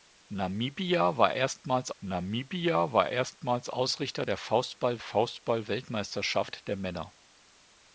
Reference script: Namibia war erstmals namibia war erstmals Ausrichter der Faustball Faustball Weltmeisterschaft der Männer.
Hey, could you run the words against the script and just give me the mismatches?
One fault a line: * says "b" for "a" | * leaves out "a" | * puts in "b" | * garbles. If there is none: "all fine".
all fine